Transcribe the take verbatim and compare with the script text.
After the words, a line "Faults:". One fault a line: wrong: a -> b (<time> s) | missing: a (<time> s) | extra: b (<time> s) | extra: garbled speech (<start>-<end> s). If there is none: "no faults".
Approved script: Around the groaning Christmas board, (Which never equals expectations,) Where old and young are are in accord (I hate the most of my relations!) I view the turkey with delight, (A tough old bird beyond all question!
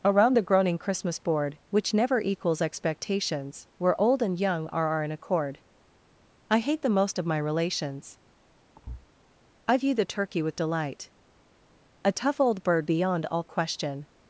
Around the groaning Christmas board, (Which never equals expectations,) Where old and young are are in accord (I hate the most of my relations!) I view the turkey with delight, (A tough old bird beyond all question!
Faults:
no faults